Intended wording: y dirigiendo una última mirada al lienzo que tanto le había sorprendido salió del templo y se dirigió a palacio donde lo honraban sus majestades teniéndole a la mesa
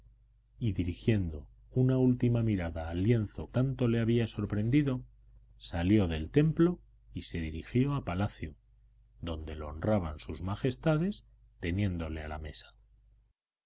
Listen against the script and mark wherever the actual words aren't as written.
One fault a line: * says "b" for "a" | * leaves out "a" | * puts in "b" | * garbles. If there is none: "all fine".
* leaves out "que"